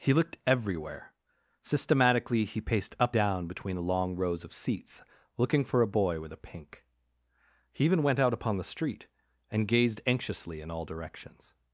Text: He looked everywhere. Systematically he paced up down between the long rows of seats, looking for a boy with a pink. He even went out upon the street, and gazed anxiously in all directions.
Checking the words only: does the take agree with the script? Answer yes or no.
yes